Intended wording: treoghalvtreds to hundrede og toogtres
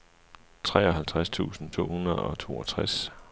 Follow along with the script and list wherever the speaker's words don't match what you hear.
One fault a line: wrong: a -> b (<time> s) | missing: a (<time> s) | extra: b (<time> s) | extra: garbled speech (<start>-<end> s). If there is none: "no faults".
extra: tusind (1.3 s)